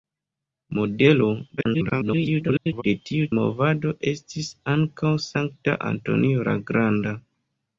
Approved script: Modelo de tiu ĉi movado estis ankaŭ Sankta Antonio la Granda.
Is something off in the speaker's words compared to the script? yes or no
yes